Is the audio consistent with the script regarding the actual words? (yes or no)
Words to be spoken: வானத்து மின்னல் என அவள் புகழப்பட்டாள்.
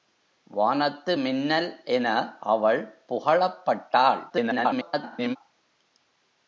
no